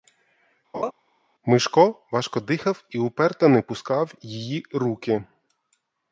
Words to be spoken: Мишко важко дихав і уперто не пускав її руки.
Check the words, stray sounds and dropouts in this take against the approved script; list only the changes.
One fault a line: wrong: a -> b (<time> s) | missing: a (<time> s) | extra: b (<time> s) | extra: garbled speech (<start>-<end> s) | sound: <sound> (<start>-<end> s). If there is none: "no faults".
sound: laugh (0.7-0.9 s)